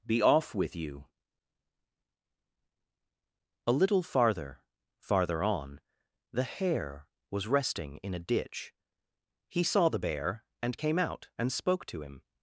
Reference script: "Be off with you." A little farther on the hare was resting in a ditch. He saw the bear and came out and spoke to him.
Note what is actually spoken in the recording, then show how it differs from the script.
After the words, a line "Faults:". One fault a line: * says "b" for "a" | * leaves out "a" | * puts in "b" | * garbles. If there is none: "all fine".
"Be off with you." A little farther farther on the hare was resting in a ditch. He saw the bear and came out and spoke to him.
Faults:
* puts in "farther"